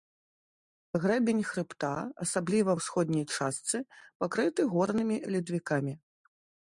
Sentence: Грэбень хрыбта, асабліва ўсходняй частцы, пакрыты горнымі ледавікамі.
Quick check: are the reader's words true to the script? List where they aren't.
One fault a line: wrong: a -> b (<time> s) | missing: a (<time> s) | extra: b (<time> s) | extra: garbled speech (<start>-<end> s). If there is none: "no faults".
no faults